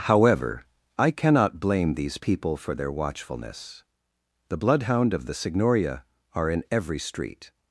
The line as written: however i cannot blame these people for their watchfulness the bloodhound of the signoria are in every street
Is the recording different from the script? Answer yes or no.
no